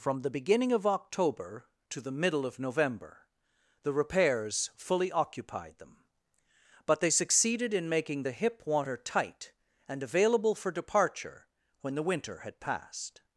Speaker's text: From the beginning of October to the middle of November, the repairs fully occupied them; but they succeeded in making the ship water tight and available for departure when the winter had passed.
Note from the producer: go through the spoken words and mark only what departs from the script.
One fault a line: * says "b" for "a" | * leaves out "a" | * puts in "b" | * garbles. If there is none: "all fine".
* says "hip" for "ship"